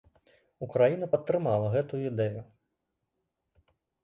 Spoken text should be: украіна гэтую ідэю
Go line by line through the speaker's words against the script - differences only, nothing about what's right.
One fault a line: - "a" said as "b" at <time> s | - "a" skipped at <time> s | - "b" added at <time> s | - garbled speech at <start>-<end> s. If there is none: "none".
- "падтрымала" added at 1.1 s